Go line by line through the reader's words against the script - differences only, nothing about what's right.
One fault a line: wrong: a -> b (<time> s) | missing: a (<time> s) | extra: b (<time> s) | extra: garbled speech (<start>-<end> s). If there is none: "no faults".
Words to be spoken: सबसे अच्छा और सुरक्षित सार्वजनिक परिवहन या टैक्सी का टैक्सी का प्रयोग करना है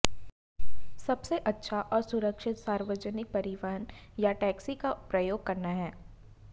missing: टैक्सी का (4.9 s)